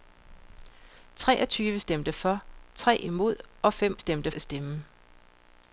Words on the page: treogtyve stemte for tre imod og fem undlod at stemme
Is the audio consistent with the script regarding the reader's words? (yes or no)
no